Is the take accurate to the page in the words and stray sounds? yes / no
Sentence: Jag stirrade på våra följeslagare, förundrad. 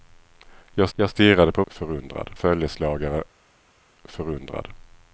no